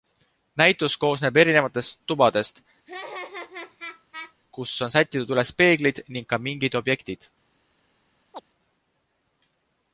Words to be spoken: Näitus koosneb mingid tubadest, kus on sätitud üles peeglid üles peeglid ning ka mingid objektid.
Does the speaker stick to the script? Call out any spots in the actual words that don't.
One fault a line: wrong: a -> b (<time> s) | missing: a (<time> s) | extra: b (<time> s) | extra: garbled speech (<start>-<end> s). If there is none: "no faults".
wrong: mingid -> erinevatest (1.4 s)
missing: üles peeglid (6.0 s)